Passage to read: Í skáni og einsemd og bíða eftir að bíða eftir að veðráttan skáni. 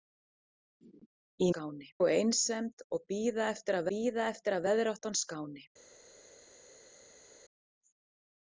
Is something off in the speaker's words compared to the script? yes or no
no